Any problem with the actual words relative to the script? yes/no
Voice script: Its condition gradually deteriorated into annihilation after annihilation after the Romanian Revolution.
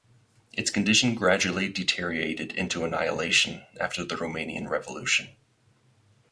yes